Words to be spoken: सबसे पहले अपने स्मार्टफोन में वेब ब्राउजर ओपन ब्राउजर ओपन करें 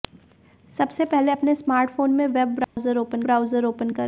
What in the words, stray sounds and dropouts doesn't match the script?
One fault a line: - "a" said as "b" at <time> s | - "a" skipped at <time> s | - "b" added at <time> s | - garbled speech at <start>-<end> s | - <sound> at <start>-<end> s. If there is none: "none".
- dropout at 2.6-2.8 s